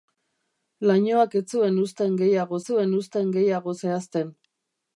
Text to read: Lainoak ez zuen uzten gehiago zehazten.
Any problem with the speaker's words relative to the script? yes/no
yes